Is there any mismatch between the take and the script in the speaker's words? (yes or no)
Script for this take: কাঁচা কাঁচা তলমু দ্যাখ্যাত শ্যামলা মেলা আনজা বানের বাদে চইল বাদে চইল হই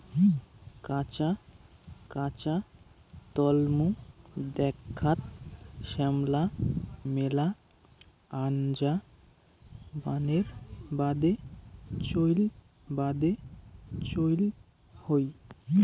no